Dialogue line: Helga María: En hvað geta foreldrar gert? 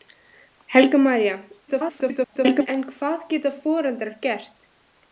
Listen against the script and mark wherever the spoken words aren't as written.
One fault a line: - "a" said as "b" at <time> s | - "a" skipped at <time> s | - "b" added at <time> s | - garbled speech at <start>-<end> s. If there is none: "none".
- garbled speech at 1.7-2.7 s